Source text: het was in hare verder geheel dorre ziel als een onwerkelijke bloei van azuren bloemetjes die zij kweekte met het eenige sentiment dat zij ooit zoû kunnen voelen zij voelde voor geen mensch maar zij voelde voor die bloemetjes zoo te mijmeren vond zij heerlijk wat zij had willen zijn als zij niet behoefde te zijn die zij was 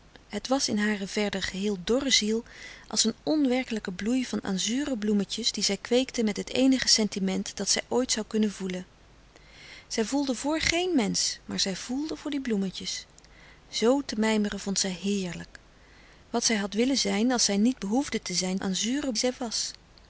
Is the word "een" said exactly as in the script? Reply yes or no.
yes